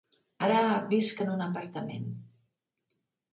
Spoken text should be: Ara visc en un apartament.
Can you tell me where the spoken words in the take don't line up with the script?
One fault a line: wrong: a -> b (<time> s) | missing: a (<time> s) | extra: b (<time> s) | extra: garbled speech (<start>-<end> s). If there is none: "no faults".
no faults